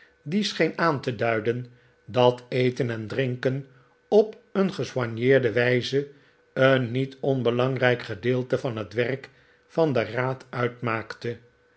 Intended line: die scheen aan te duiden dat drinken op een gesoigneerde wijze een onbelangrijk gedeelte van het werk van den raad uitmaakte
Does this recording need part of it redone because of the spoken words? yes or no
yes